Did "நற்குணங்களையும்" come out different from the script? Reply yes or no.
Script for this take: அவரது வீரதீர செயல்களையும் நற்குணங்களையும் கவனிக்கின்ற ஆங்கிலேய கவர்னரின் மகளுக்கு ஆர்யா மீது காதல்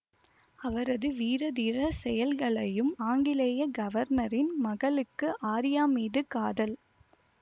yes